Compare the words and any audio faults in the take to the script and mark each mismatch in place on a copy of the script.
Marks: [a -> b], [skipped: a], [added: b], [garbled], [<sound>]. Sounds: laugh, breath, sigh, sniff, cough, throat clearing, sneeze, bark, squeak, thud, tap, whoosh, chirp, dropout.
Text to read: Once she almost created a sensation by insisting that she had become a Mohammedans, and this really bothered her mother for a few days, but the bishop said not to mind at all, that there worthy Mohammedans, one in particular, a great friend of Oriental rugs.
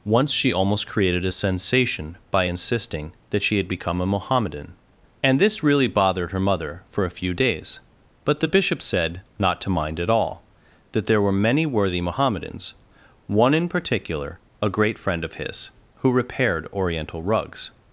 Once she almost created a sensation by insisting that she had become a [Mohammedans, -> Mohammedan] and this really bothered her mother for a few days, but the bishop said not to mind at all, that there [added: were many] worthy Mohammedans, one in particular, a great friend of [added: his who repaired] Oriental rugs.